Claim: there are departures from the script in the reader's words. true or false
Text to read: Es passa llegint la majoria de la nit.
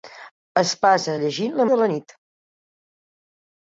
true